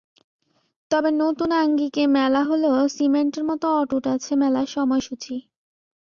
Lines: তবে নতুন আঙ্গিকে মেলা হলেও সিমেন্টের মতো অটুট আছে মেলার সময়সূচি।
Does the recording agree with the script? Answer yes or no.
yes